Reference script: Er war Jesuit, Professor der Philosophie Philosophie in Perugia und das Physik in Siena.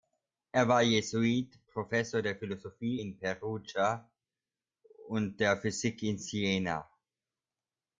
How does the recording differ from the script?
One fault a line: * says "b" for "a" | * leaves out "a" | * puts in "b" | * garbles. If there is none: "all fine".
* leaves out "Philosophie"
* says "der" for "das"